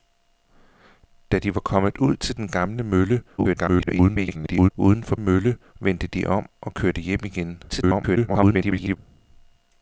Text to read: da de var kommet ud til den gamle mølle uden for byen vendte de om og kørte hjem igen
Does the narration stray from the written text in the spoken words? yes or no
yes